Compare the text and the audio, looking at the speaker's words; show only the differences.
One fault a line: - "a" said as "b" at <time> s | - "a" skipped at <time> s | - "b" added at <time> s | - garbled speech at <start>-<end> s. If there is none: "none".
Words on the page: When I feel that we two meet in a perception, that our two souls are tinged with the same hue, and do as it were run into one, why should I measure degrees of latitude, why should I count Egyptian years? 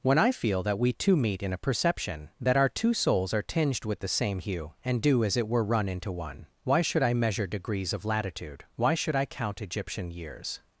none